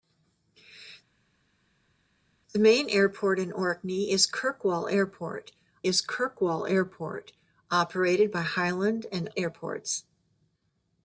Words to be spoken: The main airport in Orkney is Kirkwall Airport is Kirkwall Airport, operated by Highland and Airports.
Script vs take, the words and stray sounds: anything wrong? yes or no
no